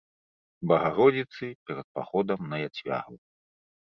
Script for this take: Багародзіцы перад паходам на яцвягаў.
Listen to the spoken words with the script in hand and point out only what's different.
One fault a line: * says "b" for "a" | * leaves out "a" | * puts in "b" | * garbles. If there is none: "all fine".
all fine